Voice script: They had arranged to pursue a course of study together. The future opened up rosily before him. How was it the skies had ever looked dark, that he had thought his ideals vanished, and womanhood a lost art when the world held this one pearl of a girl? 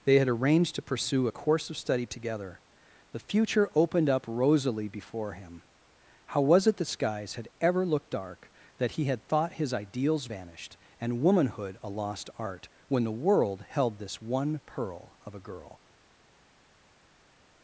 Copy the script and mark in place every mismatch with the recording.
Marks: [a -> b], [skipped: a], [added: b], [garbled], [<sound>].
They had arranged to pursue a course of study together. The future opened up rosily before him. How was it the skies had ever looked dark, that he had thought his ideals vanished, and womanhood a lost art when the world held this one pearl of a girl?